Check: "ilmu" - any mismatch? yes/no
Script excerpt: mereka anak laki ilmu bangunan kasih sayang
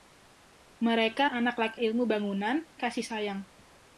no